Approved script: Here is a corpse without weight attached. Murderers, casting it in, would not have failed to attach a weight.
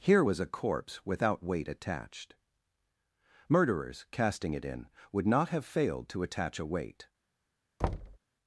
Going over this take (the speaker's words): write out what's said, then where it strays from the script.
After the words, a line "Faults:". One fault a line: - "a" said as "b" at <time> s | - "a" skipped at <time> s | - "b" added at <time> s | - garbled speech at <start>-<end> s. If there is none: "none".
Here was a corpse without weight attached. Murderers, casting it in, would not have failed to attach a weight.
Faults:
- "is" said as "was" at 0.2 s